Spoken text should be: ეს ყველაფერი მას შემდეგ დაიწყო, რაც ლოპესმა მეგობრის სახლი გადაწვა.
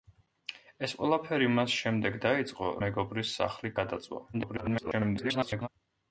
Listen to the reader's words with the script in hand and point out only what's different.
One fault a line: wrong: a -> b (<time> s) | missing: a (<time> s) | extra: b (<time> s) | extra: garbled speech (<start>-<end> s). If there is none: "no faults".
missing: რაც ლოპესმა (2.7 s)
extra: garbled speech (4.3-5.7 s)